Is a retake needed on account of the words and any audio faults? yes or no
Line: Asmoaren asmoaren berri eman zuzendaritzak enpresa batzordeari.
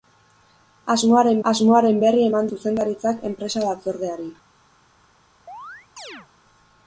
yes